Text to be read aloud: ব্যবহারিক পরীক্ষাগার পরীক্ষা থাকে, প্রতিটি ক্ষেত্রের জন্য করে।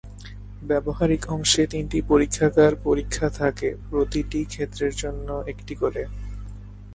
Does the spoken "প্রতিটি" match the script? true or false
true